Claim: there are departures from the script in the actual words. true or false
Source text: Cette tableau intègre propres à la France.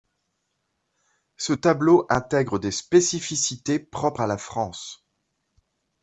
true